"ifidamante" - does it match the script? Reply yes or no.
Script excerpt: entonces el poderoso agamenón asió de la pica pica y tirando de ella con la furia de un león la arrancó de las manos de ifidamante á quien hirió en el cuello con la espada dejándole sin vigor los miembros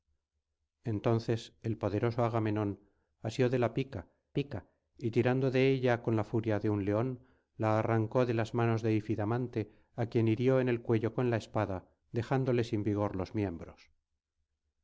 yes